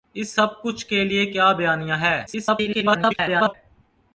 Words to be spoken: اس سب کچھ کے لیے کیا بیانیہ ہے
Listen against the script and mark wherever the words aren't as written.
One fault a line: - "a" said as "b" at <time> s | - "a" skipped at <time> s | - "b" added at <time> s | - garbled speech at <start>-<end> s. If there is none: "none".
- garbled speech at 2.3-3.5 s